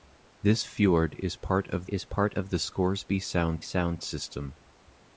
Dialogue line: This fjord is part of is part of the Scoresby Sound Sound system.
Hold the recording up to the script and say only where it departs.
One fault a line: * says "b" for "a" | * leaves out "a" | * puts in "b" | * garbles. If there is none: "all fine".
all fine